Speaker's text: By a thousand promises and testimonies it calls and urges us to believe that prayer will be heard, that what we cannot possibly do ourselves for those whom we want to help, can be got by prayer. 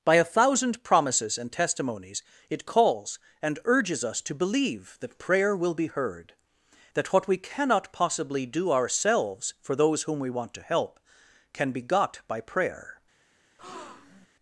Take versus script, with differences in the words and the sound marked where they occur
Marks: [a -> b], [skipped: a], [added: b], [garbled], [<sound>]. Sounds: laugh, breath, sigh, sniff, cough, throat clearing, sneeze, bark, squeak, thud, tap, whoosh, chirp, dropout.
By a thousand promises and testimonies it calls and urges us to believe that prayer will be heard, that what we cannot possibly do ourselves for those whom we want to help, can be got by prayer. [breath]